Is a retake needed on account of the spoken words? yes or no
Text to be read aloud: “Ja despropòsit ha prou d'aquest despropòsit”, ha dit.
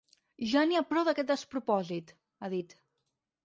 yes